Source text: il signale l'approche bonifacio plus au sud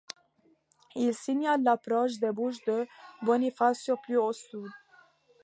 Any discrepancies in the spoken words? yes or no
yes